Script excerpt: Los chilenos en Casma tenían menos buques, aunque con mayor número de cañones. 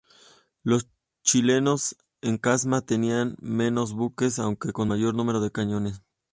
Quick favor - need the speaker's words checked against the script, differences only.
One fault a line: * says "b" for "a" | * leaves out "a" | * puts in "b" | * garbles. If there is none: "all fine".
all fine